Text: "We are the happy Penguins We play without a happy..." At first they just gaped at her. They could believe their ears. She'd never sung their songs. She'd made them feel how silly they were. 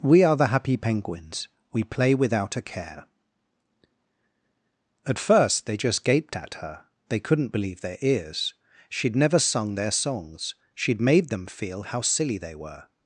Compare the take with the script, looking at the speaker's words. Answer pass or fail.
fail